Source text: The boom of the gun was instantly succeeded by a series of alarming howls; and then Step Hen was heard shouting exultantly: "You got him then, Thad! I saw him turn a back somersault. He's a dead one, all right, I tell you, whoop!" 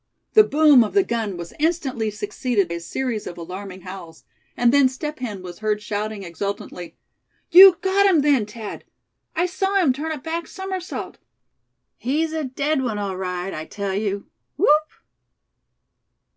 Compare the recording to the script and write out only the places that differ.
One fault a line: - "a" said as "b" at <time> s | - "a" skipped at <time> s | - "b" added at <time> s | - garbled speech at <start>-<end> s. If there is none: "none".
- "by" skipped at 2.7 s